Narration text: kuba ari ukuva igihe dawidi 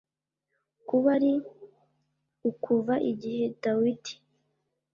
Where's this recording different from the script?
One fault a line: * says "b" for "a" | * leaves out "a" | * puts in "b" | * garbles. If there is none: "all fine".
all fine